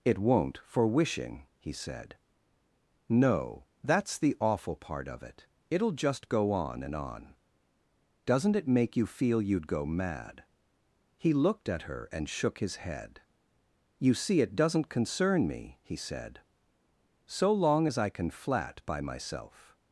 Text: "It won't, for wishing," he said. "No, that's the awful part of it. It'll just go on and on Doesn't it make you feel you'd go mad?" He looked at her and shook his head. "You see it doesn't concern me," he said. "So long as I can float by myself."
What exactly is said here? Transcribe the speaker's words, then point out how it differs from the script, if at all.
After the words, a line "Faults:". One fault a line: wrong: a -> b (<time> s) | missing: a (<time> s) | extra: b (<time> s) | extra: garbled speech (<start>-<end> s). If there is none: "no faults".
"It won't, for wishing," he said. "No, that's the awful part of it. It'll just go on and on Doesn't it make you feel you'd go mad?" He looked at her and shook his head. "You see it doesn't concern me," he said. "So long as I can flat by myself."
Faults:
wrong: float -> flat (18.3 s)